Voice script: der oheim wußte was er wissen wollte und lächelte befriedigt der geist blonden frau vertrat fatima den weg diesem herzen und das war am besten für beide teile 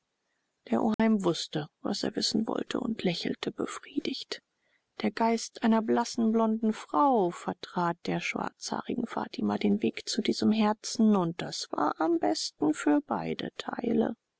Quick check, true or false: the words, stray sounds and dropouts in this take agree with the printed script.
false